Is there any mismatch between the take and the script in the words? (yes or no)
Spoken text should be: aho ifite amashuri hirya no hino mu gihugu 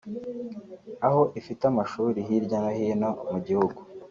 no